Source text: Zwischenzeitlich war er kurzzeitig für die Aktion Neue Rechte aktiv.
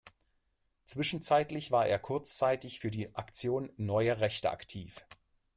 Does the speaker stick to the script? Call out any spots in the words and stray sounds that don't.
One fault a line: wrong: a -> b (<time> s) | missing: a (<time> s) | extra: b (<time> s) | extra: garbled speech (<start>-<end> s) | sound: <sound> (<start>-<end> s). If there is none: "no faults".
no faults